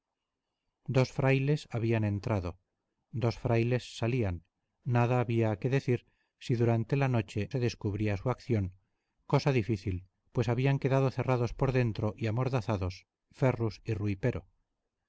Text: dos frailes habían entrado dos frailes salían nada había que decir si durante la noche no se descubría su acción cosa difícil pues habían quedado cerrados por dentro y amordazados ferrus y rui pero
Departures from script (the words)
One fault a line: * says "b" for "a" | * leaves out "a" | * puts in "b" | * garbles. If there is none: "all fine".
* leaves out "no"